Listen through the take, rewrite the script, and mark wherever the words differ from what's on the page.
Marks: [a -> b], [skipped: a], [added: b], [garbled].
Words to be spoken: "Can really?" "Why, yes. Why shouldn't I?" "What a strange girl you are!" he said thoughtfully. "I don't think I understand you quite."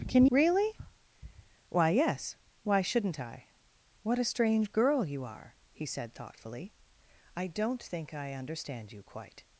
"Can really?" "Why, yes. Why shouldn't I?" "What a strange girl you are!" he said thoughtfully. "I don't think I understand you quite."